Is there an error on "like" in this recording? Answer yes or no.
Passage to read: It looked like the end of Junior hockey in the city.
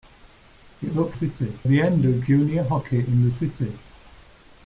yes